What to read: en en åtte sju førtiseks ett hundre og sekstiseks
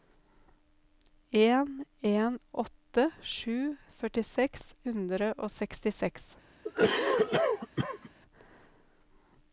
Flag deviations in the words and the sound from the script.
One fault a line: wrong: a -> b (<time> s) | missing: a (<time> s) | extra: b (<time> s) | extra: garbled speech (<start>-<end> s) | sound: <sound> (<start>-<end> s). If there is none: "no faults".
missing: ett (4.7 s)
sound: cough (6.6-8.1 s)